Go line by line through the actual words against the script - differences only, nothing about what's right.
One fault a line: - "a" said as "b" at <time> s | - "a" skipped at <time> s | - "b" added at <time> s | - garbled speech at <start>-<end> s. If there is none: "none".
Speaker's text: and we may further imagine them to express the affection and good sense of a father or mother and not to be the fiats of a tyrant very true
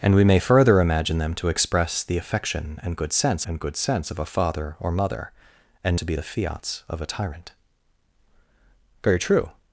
- "and good sense" added at 3.4 s
- "not" skipped at 6.0 s